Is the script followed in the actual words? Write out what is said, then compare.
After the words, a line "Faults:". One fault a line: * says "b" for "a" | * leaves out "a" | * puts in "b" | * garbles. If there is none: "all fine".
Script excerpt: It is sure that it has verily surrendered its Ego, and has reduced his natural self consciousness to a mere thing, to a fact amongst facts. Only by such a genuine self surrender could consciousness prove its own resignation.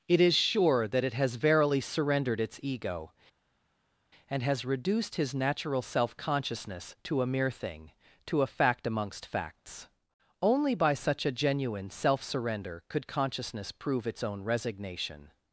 It is sure that it has verily surrendered its Ego, and has reduced his natural self consciousness to a mere thing, to a fact amongst facts. Only by such a genuine self surrender could consciousness prove its own resignation.
Faults:
all fine